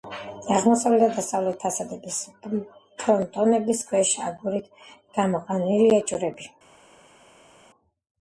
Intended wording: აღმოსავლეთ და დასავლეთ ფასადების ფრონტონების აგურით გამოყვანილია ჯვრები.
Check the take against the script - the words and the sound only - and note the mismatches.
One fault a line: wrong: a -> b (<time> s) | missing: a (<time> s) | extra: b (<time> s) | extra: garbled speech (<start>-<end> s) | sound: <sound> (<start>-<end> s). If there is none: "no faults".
extra: ქვეშ (3.9 s)